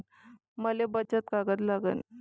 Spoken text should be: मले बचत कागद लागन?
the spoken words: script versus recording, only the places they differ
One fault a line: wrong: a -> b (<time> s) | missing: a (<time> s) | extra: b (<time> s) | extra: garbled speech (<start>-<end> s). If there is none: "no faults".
no faults